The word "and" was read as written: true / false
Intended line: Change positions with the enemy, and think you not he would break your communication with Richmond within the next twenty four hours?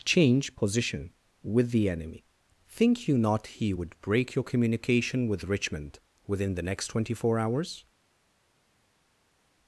false